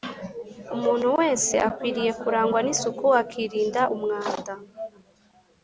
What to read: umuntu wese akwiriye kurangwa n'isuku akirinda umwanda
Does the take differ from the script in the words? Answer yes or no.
no